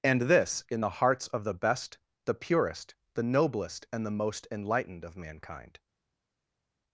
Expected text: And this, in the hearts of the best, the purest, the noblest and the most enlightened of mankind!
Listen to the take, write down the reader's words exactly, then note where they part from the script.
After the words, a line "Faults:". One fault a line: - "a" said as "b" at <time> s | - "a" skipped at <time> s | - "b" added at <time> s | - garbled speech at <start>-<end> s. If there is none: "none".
And this, in the hearts of the best, the purest, the noblest and the most enlightened of mankind!
Faults:
none